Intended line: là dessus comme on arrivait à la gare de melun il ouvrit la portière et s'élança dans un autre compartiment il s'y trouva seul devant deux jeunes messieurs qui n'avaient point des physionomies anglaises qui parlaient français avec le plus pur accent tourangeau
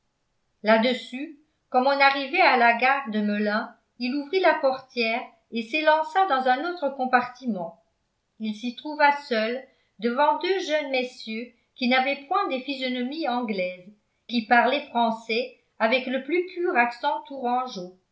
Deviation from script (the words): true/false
false